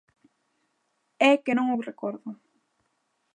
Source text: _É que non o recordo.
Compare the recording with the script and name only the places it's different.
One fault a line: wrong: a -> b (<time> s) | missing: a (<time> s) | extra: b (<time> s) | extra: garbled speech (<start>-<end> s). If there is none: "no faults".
no faults